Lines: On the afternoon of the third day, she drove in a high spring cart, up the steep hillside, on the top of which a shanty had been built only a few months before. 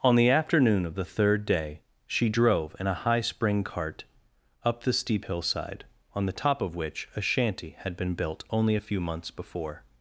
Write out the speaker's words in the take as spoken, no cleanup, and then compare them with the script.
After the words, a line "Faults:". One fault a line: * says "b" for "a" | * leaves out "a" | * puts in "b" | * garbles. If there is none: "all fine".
On the afternoon of the third day, she drove in a high spring cart, up the steep hillside, on the top of which a shanty had been built only a few months before.
Faults:
all fine